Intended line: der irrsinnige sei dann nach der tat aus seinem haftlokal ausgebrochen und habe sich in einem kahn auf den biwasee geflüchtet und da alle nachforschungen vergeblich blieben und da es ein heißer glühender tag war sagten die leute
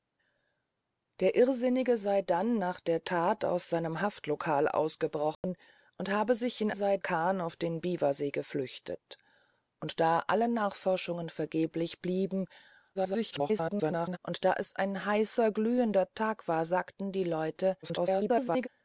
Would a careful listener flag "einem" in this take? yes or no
yes